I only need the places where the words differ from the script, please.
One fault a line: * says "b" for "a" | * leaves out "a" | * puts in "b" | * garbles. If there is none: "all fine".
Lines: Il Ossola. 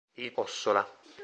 all fine